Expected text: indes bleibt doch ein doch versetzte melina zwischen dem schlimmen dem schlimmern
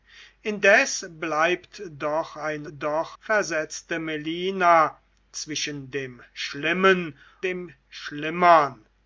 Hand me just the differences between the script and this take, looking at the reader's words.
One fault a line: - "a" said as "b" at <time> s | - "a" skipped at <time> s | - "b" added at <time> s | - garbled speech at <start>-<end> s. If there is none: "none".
none